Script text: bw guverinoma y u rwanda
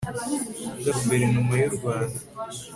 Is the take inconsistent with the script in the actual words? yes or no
no